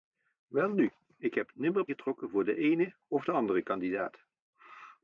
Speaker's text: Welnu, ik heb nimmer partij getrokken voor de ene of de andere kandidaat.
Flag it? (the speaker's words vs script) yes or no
yes